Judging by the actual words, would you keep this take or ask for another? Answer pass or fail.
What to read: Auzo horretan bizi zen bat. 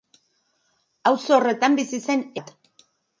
pass